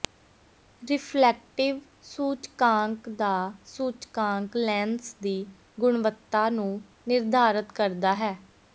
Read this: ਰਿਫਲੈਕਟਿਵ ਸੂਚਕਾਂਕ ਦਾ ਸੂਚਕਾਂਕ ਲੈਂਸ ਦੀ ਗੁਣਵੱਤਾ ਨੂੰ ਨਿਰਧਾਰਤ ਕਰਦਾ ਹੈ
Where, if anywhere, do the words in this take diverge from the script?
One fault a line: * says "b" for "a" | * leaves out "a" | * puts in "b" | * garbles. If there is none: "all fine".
all fine